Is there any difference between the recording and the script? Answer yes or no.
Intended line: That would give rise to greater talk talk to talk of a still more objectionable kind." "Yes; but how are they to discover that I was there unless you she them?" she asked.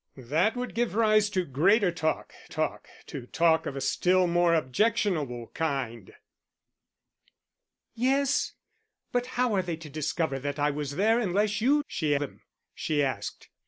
no